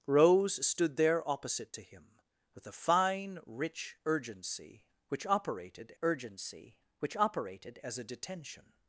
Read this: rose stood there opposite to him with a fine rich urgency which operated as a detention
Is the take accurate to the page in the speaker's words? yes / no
no